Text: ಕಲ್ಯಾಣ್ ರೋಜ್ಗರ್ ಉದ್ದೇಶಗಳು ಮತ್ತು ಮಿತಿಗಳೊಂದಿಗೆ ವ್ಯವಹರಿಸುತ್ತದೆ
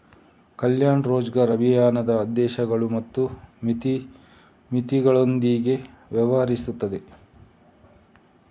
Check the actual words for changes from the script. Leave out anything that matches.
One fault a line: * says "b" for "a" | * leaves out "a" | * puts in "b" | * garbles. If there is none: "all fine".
* puts in "ಅಭಿಯಾನದ"